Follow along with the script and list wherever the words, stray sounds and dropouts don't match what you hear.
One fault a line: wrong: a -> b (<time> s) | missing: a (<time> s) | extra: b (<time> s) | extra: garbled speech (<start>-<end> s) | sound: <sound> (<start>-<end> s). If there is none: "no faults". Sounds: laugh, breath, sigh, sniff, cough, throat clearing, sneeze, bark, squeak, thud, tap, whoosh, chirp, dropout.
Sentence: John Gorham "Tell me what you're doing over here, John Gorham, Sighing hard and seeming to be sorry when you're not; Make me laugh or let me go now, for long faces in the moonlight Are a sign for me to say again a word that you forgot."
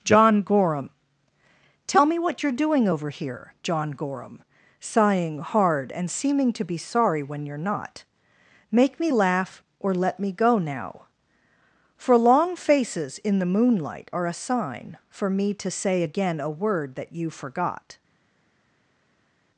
no faults